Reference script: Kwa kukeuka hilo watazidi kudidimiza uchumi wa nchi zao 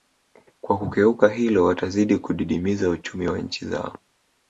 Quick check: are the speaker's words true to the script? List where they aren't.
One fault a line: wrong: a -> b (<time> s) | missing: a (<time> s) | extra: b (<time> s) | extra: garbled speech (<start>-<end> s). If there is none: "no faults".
no faults